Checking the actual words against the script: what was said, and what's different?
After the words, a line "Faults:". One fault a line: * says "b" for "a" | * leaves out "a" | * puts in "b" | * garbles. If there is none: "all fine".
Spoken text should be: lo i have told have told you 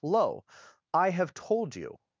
lo i have told you
Faults:
* leaves out "have told"